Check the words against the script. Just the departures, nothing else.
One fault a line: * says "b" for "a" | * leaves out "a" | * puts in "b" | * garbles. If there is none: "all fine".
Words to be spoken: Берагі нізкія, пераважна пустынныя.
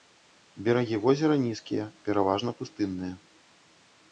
* puts in "возера"